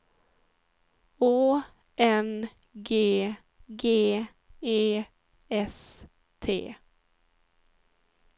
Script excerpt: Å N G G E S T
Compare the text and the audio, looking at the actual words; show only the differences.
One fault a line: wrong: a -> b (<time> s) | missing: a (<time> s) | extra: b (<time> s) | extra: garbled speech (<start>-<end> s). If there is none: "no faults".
no faults